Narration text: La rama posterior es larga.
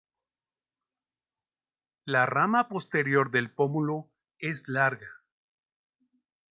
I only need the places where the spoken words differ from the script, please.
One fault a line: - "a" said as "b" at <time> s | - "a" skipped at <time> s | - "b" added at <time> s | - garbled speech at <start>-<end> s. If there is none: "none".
- "del pómulo" added at 3.3 s